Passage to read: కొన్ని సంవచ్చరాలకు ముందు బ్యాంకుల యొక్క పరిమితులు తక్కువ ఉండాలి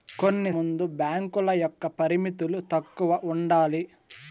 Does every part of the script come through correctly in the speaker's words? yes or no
no